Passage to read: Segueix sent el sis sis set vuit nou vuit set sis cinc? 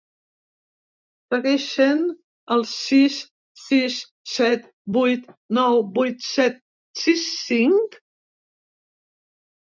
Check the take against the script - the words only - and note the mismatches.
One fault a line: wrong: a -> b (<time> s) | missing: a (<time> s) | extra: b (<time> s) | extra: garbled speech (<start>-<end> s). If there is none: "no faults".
no faults